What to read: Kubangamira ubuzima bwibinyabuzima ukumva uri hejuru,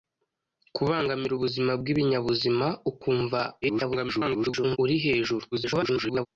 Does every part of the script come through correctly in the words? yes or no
no